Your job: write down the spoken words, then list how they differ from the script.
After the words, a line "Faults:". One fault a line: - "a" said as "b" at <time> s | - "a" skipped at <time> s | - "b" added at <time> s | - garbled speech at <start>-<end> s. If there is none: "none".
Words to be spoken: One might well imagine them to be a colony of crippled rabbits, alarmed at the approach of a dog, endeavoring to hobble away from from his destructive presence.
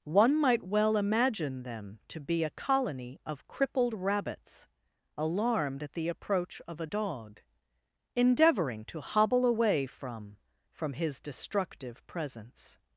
One might well imagine them to be a colony of crippled rabbits, alarmed at the approach of a dog, endeavoring to hobble away from from his destructive presence.
Faults:
none